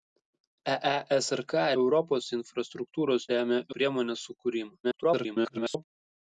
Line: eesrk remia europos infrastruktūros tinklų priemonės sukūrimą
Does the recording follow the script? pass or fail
fail